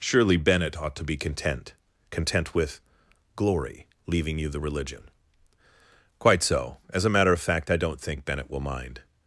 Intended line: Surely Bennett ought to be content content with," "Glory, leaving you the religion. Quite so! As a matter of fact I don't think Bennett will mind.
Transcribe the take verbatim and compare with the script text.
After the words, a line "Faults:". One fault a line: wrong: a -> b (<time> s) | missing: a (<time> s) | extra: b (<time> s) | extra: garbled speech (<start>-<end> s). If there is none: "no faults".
Surely Bennett ought to be content content with," "Glory, leaving you the religion. Quite so! As a matter of fact I don't think Bennett will mind.
Faults:
no faults